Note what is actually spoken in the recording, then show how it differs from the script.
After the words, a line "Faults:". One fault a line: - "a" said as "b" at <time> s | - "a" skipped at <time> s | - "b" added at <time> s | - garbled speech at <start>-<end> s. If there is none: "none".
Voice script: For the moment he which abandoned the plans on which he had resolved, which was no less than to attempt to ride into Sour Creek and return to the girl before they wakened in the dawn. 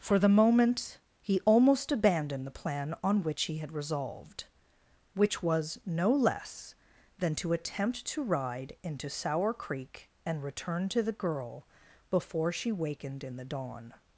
For the moment he almost abandoned the plan on which he had resolved, which was no less than to attempt to ride into Sour Creek and return to the girl before she wakened in the dawn.
Faults:
- "which" said as "almost" at 1.4 s
- "plans" said as "plan" at 2.6 s
- "they" said as "she" at 12.5 s